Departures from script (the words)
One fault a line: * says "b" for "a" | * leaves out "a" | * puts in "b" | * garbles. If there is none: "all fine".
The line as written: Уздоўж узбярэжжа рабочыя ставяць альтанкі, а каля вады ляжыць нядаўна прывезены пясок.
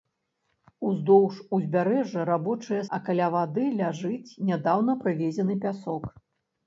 * leaves out "ставяць альтанкі"